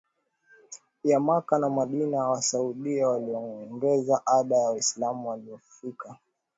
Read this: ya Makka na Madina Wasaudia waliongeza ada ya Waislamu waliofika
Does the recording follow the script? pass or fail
pass